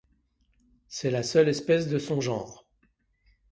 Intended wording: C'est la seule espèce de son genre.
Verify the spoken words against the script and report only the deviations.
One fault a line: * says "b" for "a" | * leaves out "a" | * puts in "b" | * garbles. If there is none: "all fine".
all fine